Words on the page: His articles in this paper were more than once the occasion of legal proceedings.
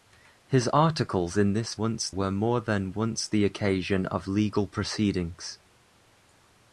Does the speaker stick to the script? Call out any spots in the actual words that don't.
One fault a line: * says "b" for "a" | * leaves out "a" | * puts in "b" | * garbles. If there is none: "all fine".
* says "once" for "paper"